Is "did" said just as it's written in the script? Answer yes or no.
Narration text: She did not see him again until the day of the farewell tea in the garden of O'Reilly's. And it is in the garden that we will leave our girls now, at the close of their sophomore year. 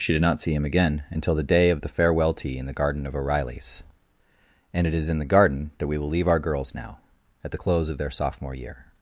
yes